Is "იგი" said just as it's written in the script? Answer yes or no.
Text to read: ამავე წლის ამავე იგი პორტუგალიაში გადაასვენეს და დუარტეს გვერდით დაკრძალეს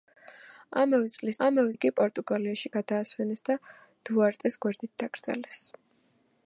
yes